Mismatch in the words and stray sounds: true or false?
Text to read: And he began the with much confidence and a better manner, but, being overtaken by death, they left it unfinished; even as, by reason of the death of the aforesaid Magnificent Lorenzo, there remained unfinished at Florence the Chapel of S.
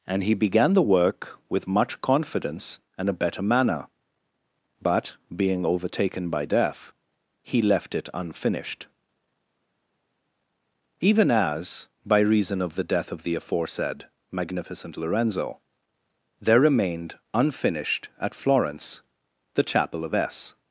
true